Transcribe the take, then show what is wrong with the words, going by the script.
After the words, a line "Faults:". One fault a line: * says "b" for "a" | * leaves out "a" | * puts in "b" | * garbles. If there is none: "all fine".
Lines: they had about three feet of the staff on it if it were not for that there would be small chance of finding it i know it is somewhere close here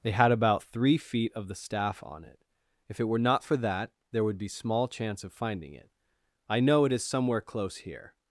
they had about three feet of the staff on it if it were not for that there would be small chance of finding it i know it is somewhere close here
Faults:
all fine